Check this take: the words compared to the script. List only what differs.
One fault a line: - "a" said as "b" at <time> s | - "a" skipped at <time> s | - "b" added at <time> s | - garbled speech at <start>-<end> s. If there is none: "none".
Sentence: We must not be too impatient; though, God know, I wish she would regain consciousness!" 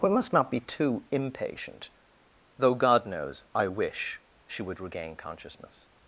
- "know" said as "knows" at 3.0 s